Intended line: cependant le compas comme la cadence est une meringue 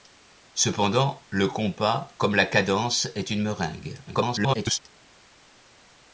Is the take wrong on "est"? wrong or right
right